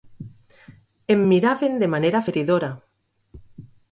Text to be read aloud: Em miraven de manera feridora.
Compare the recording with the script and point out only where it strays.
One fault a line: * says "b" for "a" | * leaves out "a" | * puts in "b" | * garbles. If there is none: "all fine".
all fine